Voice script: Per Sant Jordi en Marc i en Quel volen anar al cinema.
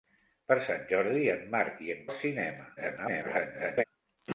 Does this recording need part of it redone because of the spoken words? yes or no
yes